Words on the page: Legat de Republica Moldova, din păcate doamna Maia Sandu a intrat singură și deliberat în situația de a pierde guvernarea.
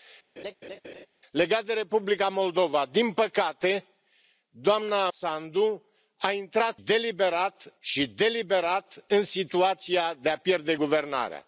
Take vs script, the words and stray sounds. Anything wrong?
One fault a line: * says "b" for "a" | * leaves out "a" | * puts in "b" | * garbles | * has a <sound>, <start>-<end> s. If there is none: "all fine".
* has a laugh, 0.4-1.1 s
* leaves out "Maia"
* says "deliberat" for "singură"